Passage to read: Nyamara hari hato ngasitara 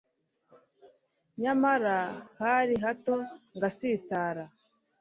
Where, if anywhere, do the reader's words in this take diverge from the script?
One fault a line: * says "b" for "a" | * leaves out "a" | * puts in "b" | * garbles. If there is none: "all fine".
all fine